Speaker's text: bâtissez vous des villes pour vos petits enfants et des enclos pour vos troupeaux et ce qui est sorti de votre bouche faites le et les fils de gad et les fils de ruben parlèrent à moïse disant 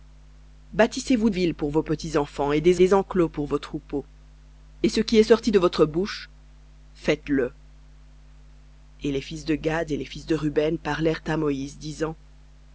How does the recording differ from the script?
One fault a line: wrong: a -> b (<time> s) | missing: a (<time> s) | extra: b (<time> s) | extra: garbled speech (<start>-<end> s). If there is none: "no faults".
missing: des (1.3 s)
extra: des (2.7 s)